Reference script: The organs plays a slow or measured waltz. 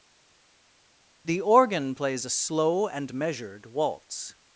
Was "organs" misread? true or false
true